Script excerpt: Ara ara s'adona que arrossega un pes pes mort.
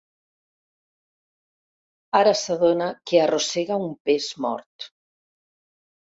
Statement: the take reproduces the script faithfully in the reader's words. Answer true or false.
false